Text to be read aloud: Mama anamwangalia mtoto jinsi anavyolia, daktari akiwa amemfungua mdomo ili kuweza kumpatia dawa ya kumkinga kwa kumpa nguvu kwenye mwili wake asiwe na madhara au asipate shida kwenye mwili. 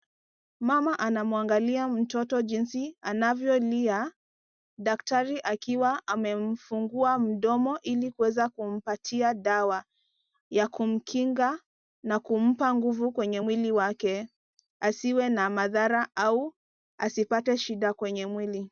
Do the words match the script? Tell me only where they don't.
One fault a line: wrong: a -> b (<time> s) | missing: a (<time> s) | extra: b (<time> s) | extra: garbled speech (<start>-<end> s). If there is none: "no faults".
wrong: kwa -> na (12.0 s)